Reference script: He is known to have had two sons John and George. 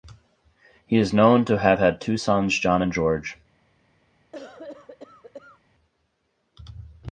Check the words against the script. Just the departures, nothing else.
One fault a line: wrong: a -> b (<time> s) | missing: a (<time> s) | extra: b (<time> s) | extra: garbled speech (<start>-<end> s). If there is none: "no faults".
no faults